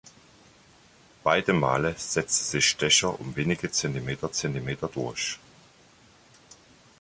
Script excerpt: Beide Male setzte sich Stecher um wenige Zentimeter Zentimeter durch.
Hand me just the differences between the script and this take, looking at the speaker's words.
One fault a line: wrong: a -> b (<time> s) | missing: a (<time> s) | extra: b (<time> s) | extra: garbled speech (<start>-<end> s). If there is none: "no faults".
no faults